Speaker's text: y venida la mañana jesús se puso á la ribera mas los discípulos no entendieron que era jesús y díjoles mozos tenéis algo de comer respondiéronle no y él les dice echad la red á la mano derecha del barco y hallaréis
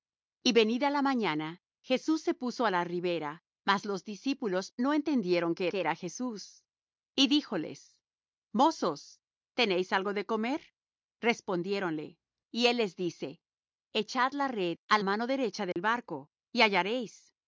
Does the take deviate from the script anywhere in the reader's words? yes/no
yes